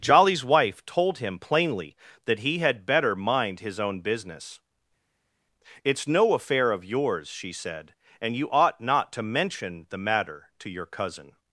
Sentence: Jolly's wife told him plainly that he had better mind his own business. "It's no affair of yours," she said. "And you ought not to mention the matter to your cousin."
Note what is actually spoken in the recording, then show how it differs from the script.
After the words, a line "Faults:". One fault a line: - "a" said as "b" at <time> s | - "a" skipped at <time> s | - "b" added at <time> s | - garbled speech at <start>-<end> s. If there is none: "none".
Jolly's wife told him plainly that he had better mind his own business. "It's no affair of yours," she said. "And you ought not to mention the matter to your cousin."
Faults:
none